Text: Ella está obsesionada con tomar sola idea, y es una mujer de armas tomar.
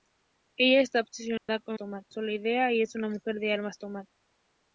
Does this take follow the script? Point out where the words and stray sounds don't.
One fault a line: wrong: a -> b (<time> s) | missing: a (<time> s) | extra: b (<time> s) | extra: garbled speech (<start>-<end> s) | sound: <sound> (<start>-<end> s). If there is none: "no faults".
sound: dropout (1.4-1.5 s)